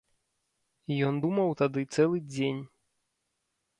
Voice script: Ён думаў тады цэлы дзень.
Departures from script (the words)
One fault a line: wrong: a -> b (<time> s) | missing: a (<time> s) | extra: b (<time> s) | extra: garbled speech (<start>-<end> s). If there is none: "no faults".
no faults